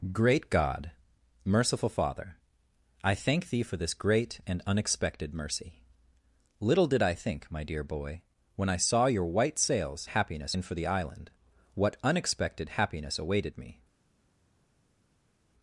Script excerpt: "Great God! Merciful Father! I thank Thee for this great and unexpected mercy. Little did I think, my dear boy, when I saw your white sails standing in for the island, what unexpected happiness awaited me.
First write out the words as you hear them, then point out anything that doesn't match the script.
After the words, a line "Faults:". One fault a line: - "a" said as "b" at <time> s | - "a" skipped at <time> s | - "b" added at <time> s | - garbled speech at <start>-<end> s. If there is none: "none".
"Great God! Merciful Father! I thank Thee for this great and unexpected mercy. Little did I think, my dear boy, when I saw your white sails happiness in for the island, what unexpected happiness awaited me.
Faults:
- "standing" said as "happiness" at 10.1 s